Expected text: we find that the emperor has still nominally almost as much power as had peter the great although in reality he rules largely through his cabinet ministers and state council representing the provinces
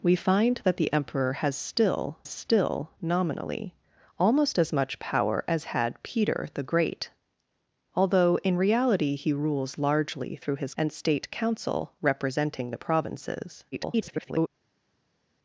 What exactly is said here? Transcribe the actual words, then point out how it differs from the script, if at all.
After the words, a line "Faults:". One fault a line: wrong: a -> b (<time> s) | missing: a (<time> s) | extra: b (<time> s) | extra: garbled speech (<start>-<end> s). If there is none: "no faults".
we find that the emperor has still still nominally almost as much power as had peter the great although in reality he rules largely through his and state council representing the provinces [garbled]
Faults:
extra: still (2.3 s)
missing: cabinet ministers (10.7 s)
extra: garbled speech (13.7-14.5 s)